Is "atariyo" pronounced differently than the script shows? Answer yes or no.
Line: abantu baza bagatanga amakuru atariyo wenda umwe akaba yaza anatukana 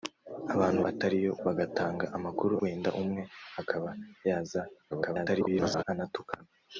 yes